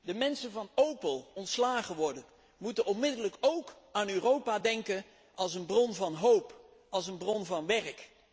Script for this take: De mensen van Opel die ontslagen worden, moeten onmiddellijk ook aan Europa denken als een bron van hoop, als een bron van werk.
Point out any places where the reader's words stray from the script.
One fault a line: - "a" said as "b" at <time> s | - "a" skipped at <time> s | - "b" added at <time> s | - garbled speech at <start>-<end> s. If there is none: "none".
- "die" skipped at 1.3 s